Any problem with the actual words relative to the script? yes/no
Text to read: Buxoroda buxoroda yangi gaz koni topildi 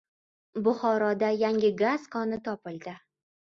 yes